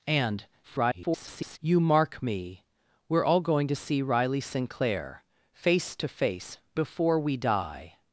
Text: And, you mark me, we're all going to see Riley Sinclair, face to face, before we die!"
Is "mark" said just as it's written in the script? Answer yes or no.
yes